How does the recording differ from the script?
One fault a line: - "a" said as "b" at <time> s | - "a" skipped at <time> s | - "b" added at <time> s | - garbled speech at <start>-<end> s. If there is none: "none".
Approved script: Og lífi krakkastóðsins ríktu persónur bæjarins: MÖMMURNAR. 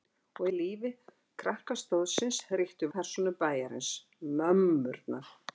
none